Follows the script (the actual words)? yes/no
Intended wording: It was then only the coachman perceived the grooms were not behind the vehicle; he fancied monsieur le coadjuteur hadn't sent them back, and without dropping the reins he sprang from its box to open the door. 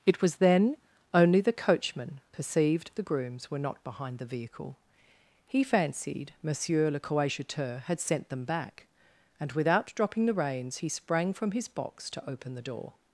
no